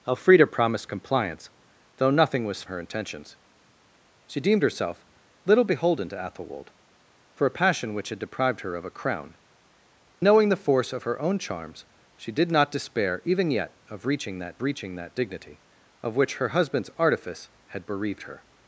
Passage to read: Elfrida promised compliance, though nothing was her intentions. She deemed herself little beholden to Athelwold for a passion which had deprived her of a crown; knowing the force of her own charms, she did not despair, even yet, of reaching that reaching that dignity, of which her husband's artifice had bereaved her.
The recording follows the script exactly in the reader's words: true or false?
true